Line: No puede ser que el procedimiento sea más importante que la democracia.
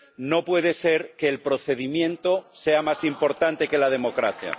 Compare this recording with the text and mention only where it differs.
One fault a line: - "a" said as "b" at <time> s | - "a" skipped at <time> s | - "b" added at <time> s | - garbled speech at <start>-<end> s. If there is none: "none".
none